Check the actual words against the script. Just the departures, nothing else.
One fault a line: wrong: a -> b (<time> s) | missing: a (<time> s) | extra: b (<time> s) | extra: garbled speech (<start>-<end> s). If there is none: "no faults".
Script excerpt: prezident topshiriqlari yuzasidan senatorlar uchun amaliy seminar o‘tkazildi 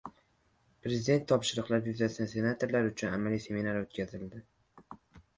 no faults